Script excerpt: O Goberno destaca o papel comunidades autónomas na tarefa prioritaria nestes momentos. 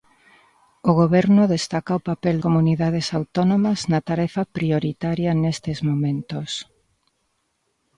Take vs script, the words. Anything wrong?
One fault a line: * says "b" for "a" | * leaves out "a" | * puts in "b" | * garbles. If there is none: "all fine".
all fine